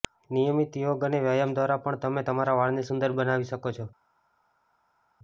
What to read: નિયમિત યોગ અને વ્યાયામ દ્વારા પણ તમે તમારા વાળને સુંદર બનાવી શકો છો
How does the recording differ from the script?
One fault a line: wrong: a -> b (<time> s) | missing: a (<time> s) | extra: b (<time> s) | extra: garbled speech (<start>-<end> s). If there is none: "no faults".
no faults